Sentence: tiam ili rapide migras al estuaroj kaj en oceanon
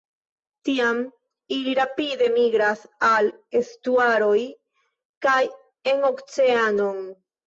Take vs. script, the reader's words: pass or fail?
pass